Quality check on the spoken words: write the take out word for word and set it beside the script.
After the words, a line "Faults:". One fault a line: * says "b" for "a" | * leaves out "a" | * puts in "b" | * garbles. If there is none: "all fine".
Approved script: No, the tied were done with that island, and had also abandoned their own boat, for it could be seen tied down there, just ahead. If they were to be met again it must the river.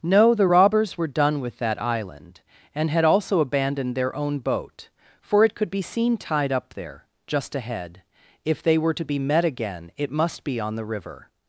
No, the robbers were done with that island, and had also abandoned their own boat, for it could be seen tied up there, just ahead. If they were to be met again it must be on the river.
Faults:
* says "robbers" for "tied"
* says "up" for "down"
* puts in "be on"